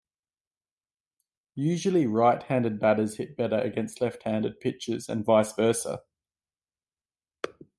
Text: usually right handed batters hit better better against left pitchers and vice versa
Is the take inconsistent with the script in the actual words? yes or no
yes